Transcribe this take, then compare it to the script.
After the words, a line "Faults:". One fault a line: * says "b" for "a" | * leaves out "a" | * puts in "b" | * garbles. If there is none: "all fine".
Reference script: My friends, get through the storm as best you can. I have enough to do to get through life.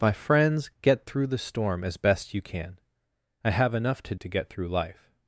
My friends, get through the storm as best you can. I have enough to to get through life.
Faults:
* leaves out "do"